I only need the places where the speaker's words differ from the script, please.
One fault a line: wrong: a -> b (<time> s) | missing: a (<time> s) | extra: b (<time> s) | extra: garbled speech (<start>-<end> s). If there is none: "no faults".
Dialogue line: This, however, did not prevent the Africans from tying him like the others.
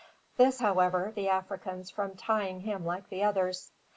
missing: did not prevent (1.1 s)